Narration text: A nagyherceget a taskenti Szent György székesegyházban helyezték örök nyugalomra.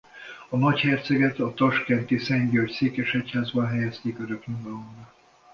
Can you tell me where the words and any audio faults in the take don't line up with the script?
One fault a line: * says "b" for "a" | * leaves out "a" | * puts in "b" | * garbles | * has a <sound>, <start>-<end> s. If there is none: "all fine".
all fine